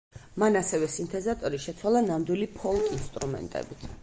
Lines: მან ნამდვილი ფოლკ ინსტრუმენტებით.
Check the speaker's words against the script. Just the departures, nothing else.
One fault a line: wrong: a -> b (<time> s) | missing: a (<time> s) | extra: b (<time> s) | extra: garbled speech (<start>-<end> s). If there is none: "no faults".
extra: ასევე სინთეზატორი შეცვალა (0.6 s)